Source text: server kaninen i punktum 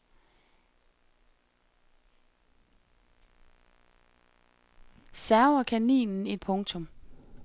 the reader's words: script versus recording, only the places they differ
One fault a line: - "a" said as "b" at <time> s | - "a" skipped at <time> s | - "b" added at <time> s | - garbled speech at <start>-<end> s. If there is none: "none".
none